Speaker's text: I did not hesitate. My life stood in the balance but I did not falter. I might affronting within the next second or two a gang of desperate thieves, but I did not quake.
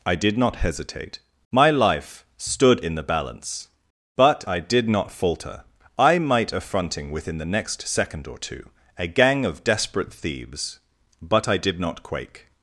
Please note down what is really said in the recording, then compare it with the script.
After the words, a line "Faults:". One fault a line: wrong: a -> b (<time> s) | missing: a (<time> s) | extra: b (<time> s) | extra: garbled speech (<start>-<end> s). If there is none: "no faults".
I did not hesitate. My life stood in the balance but I did not falter. I might affronting within the next second or two a gang of desperate thieves, but I did not quake.
Faults:
no faults